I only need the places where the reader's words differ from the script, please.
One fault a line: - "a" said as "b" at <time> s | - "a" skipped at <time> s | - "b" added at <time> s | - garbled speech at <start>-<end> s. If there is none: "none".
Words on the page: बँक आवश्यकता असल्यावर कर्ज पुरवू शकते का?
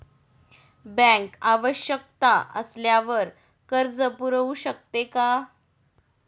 none